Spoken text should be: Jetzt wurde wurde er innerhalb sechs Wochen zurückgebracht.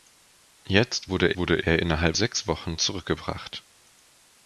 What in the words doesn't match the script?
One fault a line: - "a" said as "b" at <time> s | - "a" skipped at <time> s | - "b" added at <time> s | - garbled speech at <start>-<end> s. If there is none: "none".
none